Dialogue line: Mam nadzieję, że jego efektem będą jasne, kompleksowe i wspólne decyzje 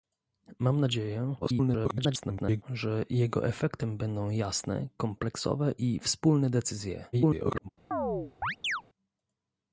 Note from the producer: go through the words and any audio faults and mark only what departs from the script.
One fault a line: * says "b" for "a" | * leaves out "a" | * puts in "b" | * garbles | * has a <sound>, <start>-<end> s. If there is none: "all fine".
* garbles
* garbles
* has a chirp, 7.9-8.8 s